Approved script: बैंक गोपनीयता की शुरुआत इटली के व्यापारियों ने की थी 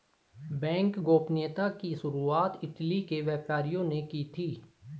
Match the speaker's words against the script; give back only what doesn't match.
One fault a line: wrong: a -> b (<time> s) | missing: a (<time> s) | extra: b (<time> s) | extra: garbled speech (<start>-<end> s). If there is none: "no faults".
no faults